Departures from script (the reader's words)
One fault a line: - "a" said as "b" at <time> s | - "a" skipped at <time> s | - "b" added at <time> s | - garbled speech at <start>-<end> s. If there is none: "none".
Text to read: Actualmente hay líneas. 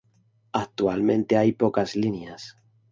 - "pocas" added at 1.5 s